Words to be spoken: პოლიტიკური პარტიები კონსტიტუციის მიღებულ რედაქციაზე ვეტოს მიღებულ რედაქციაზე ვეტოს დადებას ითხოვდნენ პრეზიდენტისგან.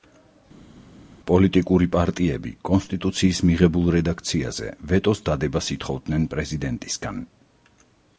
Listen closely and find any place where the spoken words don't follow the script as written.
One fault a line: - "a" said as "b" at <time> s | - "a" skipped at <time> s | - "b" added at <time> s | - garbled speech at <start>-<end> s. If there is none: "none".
- "მიღებულ რედაქციაზე ვეტოს" skipped at 5.2 s